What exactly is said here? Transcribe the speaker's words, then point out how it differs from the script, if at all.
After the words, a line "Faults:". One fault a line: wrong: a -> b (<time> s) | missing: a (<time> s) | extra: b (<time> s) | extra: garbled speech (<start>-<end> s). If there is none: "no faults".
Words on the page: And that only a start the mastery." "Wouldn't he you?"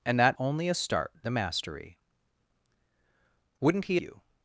And that only a start the mastery." "Wouldn't he you?"
Faults:
no faults